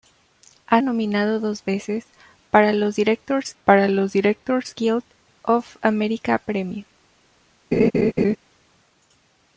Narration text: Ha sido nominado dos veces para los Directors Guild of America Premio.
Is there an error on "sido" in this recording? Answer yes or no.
yes